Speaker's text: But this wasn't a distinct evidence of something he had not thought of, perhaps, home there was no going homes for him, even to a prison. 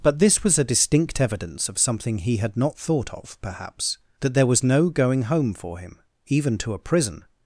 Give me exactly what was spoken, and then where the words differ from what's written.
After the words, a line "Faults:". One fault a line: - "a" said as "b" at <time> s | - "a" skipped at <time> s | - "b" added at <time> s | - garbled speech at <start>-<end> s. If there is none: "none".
But this was a distinct evidence of something he had not thought of, perhaps, that there was no going home for him, even to a prison.
Faults:
- "wasn't" said as "was" at 0.4 s
- "home" said as "that" at 4.2 s
- "homes" said as "home" at 5.2 s